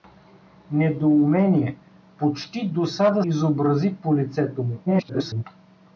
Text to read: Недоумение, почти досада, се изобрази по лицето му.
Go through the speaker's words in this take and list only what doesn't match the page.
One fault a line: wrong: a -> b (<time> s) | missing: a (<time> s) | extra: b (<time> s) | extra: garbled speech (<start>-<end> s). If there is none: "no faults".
missing: се (3.2 s)
extra: garbled speech (4.9-5.4 s)